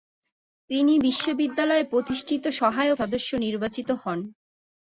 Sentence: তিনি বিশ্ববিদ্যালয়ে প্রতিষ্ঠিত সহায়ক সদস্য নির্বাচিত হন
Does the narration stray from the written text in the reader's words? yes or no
no